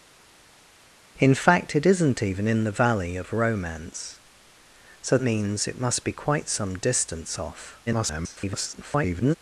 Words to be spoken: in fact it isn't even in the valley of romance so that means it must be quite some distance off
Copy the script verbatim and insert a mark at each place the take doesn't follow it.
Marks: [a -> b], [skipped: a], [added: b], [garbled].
in fact it isn't even in the valley of romance so [skipped: that] means it must be quite some distance off [garbled]